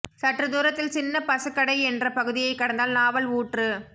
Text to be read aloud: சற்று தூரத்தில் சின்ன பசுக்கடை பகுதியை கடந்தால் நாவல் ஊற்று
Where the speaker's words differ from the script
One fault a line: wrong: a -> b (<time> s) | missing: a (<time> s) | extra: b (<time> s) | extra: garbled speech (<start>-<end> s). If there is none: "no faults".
extra: என்ற (1.8 s)